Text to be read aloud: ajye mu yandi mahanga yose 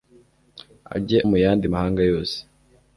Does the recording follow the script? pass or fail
pass